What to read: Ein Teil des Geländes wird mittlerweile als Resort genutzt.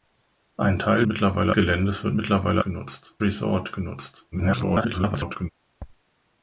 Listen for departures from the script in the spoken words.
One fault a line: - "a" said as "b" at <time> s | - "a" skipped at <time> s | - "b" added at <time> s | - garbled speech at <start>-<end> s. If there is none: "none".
- "des" said as "mittlerweile" at 1.1 s
- "als" said as "genutzt" at 2.6 s
- garbled speech at 4.3-5.5 s